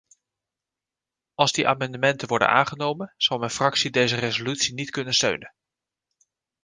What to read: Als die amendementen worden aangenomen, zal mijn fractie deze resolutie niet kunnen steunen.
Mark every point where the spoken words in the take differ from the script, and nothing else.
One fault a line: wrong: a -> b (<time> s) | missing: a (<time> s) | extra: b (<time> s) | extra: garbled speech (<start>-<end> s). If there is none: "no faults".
no faults